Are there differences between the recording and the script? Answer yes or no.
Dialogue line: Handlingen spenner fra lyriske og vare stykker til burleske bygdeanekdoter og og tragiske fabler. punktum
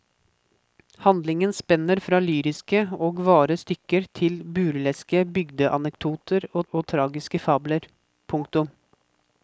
no